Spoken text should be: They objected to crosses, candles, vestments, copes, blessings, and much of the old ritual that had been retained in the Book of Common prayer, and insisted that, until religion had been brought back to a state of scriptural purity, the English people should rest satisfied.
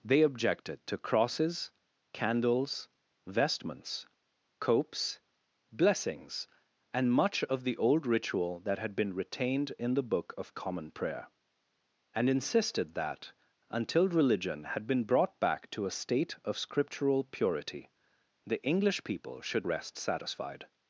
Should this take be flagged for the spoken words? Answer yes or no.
no